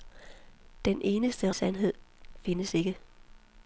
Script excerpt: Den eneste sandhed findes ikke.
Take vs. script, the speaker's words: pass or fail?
pass